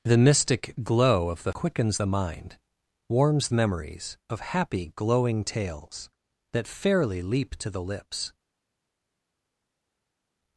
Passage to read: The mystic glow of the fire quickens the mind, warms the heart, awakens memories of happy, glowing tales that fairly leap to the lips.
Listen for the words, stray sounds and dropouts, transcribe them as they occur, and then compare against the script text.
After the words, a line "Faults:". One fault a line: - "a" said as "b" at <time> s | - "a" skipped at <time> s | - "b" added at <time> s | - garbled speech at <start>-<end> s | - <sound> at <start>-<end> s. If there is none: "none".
The mystic glow of the quickens the mind, warms memories of happy, glowing tales that fairly leap to the lips.
Faults:
- "fire" skipped at 1.5 s
- "the heart awakens" skipped at 3.5 s